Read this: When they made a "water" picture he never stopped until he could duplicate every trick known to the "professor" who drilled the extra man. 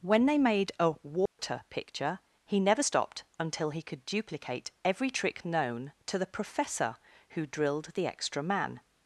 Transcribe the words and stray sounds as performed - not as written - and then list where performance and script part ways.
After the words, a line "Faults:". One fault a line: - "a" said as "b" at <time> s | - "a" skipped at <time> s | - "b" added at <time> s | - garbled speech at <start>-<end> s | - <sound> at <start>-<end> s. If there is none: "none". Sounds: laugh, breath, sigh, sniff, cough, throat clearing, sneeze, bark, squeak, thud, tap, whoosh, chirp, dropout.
When they made a "water" picture he never stopped until he could duplicate every trick known to the "professor" who drilled the extra man.
Faults:
- dropout at 1.3-1.4 s